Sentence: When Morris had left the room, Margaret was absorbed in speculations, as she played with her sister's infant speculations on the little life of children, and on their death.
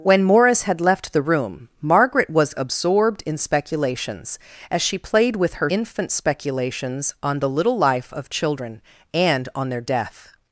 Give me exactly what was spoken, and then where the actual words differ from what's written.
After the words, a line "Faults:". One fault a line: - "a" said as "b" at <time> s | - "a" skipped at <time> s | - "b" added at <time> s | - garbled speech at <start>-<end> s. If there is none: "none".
When Morris had left the room, Margaret was absorbed in speculations, as she played with her infant speculations on the little life of children, and on their death.
Faults:
- "sister's" skipped at 5.7 s